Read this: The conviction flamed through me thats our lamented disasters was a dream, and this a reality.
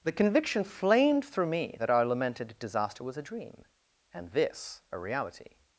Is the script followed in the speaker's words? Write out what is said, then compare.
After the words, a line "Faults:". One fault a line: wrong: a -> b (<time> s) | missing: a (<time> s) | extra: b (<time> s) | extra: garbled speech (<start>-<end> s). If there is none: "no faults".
The conviction flamed through me that our lamented disaster was a dream, and this a reality.
Faults:
wrong: thats -> that (1.8 s)
wrong: disasters -> disaster (2.6 s)